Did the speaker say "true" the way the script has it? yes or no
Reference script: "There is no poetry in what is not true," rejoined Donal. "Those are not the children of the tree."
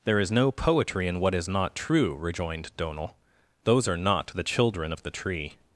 yes